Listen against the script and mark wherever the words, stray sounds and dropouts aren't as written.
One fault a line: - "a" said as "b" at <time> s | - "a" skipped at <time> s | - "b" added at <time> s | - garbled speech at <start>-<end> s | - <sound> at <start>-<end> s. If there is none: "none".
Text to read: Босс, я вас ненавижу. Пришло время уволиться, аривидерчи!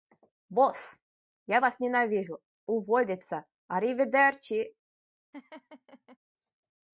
- "Пришло время" skipped at 2.4 s
- laugh at 5.3-6.2 s